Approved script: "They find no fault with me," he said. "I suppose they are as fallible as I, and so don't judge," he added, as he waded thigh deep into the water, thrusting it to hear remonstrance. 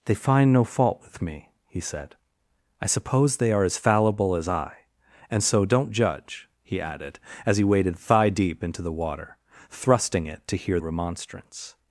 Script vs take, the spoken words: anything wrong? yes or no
no